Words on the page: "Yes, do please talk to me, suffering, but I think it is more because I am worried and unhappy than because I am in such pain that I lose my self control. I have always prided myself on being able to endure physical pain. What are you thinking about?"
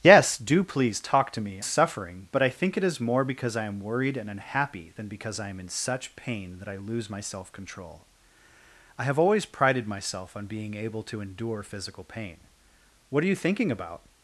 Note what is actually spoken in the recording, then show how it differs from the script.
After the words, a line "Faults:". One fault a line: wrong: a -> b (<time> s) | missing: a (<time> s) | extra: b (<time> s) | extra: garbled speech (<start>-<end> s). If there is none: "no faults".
"Yes, do please talk to me, suffering, but I think it is more because I am worried and unhappy than because I am in such pain that I lose my self control. I have always prided myself on being able to endure physical pain. What are you thinking about?"
Faults:
no faults